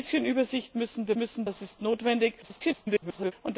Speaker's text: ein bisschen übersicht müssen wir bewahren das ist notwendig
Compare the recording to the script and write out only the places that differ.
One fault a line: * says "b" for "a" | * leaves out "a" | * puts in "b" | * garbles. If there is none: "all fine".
* says "müssen" for "bewahren"
* garbles